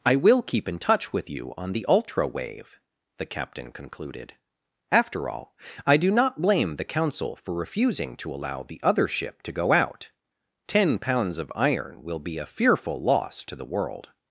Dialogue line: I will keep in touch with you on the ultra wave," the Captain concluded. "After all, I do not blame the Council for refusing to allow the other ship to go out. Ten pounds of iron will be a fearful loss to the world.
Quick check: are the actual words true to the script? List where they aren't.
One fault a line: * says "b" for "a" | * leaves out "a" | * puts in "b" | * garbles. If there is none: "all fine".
all fine